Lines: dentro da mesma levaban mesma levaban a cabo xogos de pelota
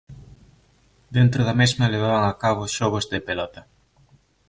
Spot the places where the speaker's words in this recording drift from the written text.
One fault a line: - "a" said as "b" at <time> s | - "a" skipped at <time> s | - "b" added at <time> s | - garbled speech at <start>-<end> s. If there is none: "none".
- "mesma levaban" skipped at 2.2 s